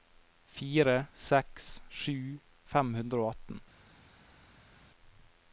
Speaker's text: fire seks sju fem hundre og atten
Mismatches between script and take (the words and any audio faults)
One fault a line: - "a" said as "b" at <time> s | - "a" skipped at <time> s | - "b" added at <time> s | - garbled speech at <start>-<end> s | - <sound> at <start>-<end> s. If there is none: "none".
none